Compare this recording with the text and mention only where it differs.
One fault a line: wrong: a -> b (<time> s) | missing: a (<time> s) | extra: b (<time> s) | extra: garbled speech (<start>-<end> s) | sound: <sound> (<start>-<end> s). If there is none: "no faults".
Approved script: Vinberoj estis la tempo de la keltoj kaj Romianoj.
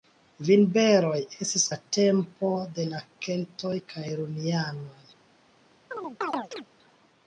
sound: chirp (5.9-6.7 s)